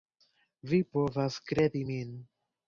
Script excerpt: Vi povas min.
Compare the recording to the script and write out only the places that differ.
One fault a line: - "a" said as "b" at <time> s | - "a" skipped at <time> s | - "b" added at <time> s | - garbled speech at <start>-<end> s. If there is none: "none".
- "kredi" added at 1.5 s